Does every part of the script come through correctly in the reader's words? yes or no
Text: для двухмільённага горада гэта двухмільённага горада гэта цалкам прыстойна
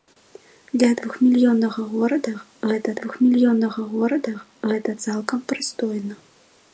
yes